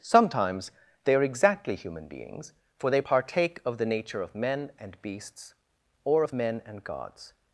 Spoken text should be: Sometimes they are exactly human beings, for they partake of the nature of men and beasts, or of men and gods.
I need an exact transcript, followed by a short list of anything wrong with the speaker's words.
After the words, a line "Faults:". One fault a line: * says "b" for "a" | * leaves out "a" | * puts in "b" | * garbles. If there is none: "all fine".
Sometimes they are exactly human beings, for they partake of the nature of men and beasts, or of men and gods.
Faults:
all fine